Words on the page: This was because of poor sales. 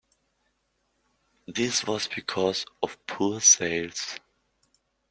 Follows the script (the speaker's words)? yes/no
yes